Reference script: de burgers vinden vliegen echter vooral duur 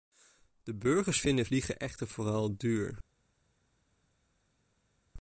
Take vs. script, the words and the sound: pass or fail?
pass